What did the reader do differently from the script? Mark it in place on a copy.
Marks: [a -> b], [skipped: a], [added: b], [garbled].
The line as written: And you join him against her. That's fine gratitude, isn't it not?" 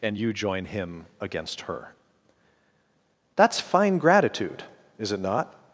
And you join him against her. That's fine gratitude, [isn't -> is] it not?"